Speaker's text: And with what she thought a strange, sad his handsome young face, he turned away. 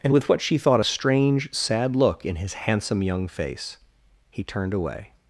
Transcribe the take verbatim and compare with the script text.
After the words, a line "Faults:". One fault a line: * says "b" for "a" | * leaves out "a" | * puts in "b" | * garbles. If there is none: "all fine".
And with what she thought a strange, sad look in his handsome young face, he turned away.
Faults:
* puts in "look in"